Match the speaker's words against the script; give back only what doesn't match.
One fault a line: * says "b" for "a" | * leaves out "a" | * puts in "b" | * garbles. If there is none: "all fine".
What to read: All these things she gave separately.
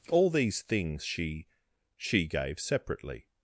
* puts in "she"